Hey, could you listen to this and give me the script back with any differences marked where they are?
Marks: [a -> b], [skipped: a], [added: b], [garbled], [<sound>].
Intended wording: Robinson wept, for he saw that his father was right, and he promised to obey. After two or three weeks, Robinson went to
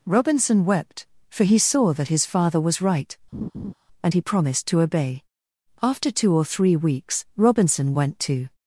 Robinson wept, for he saw that his father was right, [laugh] and he promised to obey. After two or three weeks, Robinson went to